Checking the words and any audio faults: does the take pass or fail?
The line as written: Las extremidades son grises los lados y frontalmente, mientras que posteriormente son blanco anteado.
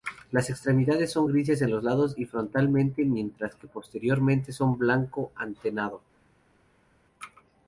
fail